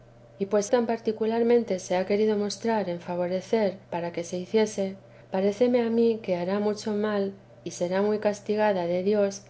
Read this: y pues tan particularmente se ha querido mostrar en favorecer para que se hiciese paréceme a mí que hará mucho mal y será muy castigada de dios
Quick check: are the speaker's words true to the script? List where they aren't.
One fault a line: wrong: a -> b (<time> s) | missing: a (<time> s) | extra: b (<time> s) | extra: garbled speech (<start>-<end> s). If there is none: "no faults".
no faults